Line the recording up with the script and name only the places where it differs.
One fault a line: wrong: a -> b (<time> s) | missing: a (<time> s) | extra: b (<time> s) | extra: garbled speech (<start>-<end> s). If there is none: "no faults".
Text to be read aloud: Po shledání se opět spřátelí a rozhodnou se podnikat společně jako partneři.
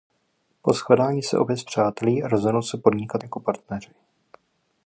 missing: společně (3.2 s)